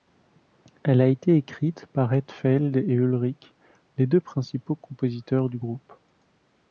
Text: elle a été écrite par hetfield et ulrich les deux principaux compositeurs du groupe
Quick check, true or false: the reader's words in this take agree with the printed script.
true